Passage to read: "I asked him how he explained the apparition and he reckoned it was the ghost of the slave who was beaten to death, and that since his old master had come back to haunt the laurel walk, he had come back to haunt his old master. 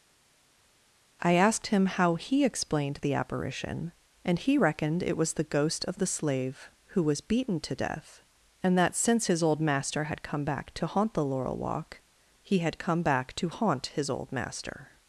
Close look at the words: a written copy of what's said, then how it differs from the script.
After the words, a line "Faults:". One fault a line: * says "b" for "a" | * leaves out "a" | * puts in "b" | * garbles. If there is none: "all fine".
"I asked him how he explained the apparition and he reckoned it was the ghost of the slave who was beaten to death, and that since his old master had come back to haunt the laurel walk, he had come back to haunt his old master.
Faults:
all fine